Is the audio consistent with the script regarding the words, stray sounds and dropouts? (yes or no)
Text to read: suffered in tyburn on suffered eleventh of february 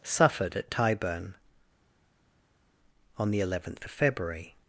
no